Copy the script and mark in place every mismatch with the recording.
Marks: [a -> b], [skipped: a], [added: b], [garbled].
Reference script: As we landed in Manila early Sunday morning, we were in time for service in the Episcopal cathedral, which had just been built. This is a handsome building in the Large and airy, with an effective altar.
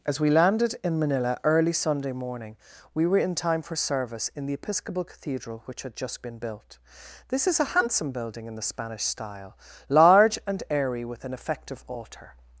As we landed in Manila early Sunday morning, we were in time for service in the Episcopal cathedral, which had just been built. This is a handsome building in the [added: Spanish style] Large and airy, with an effective altar.